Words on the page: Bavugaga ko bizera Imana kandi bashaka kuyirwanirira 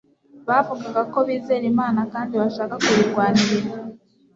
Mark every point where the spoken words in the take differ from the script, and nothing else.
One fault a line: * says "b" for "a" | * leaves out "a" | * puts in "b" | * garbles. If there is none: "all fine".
all fine